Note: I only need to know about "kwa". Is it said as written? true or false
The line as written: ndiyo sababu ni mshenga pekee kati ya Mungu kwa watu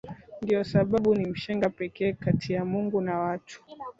false